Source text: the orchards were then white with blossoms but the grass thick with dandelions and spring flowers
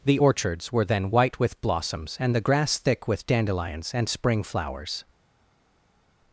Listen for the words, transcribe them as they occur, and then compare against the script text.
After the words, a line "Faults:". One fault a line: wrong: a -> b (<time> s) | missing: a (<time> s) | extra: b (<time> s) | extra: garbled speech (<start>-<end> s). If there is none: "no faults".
the orchards were then white with blossoms and the grass thick with dandelions and spring flowers
Faults:
wrong: but -> and (2.2 s)